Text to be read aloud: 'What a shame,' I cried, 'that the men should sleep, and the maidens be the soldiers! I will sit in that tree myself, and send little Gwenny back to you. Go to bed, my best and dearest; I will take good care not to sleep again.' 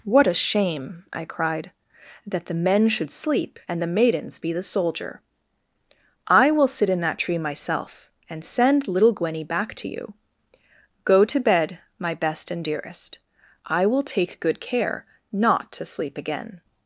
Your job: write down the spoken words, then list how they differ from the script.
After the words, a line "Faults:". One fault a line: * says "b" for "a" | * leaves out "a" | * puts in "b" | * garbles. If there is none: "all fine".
'What a shame,' I cried, 'that the men should sleep, and the maidens be the soldier! I will sit in that tree myself, and send little Gwenny back to you. Go to bed, my best and dearest; I will take good care not to sleep again.'
Faults:
* says "soldier" for "soldiers"